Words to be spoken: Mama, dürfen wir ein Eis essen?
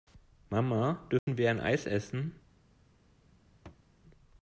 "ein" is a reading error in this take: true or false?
false